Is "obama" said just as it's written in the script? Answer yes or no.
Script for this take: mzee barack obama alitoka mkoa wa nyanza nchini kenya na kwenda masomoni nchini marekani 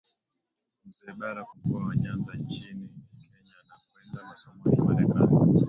no